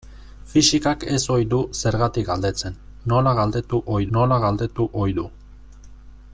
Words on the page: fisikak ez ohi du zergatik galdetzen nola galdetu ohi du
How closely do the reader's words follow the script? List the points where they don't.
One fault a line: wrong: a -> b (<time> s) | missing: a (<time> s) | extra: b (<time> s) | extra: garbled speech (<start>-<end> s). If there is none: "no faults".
extra: nola galdetu ohi (4.2 s)